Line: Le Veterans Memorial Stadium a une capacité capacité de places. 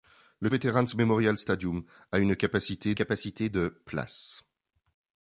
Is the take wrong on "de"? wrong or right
right